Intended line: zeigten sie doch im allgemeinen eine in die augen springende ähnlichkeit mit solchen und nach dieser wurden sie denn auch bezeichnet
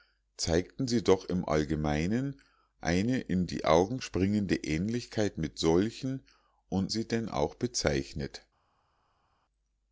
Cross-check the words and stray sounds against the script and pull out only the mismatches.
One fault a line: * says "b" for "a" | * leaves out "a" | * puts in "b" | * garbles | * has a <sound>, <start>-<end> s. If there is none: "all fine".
* leaves out "nach dieser wurden"